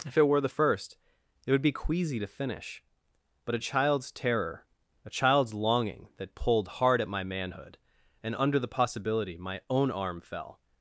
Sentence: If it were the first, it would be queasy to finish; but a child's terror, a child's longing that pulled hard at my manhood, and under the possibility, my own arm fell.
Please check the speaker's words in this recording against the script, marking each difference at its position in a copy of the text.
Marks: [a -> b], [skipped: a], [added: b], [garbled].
If it were the first, it would be queasy to finish; but a child's terror, a child's longing that pulled hard at my manhood, and under the possibility, my own arm fell.